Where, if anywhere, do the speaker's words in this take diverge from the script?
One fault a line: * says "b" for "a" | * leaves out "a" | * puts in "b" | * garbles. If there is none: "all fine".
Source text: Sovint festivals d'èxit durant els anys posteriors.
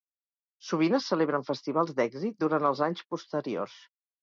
* puts in "es celebren"